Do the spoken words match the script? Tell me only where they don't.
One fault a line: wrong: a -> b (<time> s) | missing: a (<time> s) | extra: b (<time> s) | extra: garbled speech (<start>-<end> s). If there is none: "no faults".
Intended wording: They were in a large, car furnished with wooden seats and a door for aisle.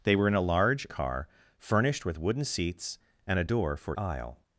no faults